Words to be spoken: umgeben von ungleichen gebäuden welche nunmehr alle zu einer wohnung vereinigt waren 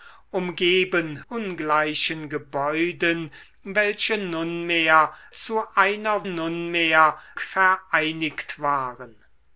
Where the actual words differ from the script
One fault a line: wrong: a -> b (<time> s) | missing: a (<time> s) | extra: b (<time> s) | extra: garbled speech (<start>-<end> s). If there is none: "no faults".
missing: von (1.2 s)
missing: alle (5.1 s)
wrong: wohnung -> nunmehr (6.2 s)